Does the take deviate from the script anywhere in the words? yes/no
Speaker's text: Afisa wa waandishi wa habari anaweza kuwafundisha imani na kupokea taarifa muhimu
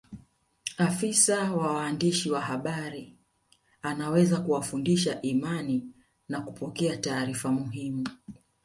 no